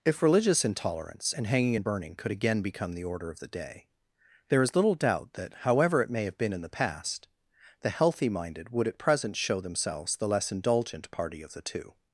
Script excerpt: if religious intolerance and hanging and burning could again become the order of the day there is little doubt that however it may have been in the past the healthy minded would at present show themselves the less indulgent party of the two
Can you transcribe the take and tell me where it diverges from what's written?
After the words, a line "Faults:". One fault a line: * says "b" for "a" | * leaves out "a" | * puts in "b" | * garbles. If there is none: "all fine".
if religious intolerance and hanging and burning could again become the order of the day there is little doubt that however it may have been in the past the healthy minded would at present show themselves the less indulgent party of the two
Faults:
all fine